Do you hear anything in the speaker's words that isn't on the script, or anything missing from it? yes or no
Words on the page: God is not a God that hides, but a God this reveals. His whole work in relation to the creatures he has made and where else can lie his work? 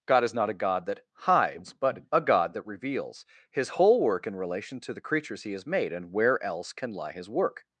yes